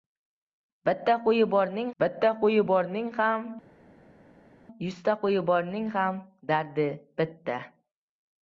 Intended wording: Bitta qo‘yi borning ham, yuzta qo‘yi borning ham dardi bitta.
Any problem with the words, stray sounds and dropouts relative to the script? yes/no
yes